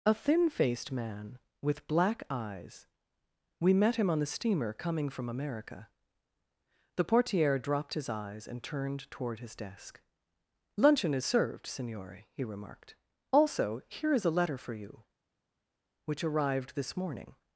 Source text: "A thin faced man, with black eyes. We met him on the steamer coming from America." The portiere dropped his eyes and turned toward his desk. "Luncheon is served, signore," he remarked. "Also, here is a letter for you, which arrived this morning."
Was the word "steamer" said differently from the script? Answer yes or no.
no